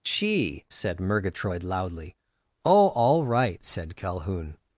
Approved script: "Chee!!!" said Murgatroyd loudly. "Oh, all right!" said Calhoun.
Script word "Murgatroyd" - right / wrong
right